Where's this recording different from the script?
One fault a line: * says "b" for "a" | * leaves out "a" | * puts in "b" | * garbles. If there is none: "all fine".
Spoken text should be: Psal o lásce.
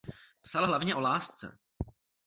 * puts in "hlavně"